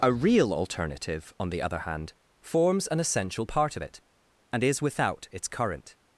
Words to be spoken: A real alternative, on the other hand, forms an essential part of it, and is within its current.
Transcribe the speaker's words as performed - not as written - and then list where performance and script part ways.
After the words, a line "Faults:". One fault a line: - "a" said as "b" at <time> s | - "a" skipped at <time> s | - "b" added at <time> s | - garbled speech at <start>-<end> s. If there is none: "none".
A real alternative, on the other hand, forms an essential part of it, and is without its current.
Faults:
- "within" said as "without" at 4.8 s